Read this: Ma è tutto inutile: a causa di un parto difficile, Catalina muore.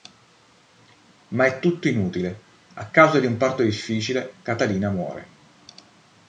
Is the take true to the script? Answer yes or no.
yes